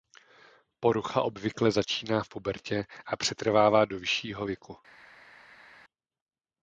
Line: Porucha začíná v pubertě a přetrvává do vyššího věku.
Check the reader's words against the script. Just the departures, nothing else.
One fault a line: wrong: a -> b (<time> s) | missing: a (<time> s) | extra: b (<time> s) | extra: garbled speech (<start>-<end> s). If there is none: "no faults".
extra: obvykle (1.2 s)